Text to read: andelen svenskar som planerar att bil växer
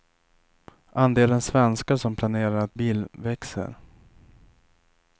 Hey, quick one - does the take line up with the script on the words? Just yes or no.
yes